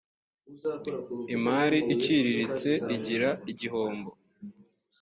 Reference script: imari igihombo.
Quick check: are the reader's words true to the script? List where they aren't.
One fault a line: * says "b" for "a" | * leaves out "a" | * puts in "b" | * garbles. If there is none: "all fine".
* puts in "iciriritse igira"